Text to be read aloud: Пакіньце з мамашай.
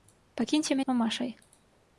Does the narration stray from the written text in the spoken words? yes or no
no